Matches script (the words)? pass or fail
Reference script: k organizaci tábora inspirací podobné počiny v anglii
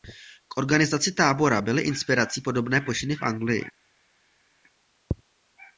fail